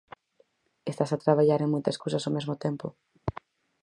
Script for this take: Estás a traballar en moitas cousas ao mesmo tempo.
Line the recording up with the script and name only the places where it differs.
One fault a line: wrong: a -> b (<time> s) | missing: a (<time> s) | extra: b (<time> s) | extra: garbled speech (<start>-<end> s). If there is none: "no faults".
no faults